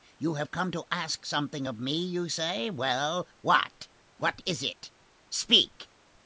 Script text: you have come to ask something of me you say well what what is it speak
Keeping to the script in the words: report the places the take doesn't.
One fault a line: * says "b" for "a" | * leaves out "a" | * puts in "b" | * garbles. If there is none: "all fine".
all fine